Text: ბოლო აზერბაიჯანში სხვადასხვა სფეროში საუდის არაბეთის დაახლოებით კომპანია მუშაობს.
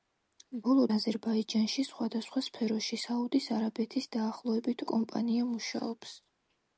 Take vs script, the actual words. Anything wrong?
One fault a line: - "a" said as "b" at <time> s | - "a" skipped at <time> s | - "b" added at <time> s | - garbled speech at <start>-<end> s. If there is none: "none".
none